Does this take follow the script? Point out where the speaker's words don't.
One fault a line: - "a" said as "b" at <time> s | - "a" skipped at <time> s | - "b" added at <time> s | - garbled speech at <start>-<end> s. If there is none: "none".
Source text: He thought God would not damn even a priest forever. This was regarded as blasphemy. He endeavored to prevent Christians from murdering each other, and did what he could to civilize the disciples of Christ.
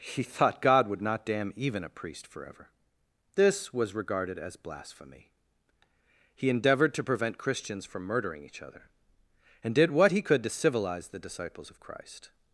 none